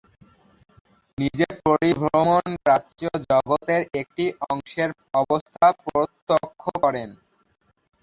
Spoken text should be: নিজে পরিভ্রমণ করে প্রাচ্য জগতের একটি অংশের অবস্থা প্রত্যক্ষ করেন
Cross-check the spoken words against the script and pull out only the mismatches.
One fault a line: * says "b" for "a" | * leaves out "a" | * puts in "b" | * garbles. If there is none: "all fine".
* leaves out "করে"